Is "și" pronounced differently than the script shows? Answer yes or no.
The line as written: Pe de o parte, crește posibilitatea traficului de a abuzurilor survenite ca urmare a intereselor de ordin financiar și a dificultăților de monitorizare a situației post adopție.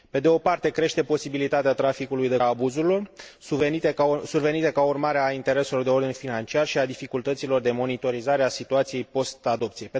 no